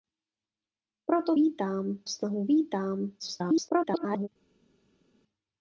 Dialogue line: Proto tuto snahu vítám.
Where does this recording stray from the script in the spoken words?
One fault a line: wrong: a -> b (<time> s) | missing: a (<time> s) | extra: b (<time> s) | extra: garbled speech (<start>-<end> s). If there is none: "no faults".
wrong: tuto -> vítám (1.3 s)
extra: garbled speech (3.2-4.3 s)